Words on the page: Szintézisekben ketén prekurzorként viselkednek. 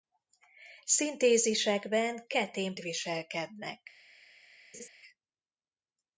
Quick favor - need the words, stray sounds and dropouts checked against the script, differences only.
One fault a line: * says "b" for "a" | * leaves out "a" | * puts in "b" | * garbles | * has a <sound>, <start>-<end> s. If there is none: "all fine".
* leaves out "prekurzorként"
* has a laugh, 4.7-4.9 s